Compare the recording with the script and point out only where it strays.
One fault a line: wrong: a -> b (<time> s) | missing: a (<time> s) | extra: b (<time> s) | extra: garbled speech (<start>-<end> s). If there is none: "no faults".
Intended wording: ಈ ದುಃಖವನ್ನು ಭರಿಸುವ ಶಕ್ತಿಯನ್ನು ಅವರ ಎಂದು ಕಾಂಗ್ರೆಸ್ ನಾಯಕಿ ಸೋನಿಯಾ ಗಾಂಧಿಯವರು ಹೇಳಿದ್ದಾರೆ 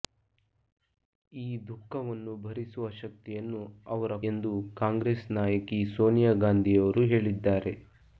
no faults